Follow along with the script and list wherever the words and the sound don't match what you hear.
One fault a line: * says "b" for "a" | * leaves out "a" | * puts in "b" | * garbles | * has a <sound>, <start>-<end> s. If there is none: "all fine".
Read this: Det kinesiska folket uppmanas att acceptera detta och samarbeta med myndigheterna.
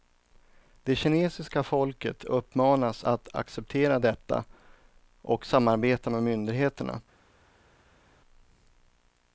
all fine